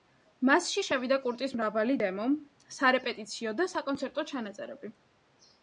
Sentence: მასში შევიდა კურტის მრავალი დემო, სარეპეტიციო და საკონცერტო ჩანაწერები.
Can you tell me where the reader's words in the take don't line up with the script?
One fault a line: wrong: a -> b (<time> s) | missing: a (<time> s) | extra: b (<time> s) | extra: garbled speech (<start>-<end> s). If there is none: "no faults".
no faults